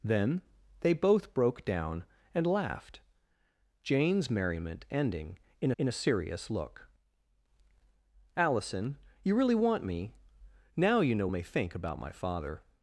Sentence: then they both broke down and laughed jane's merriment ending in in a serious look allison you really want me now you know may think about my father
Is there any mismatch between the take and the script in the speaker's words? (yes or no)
no